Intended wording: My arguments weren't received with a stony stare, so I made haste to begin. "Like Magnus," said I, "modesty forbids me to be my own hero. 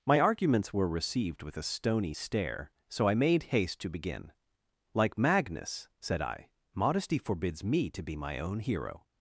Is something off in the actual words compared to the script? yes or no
yes